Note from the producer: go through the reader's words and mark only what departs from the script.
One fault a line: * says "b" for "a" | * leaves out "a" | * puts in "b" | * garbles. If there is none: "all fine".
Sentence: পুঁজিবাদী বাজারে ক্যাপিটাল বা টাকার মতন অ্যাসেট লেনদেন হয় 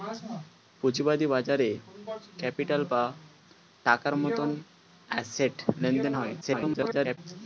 * garbles